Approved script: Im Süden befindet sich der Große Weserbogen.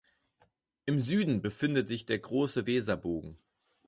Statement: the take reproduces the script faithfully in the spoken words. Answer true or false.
true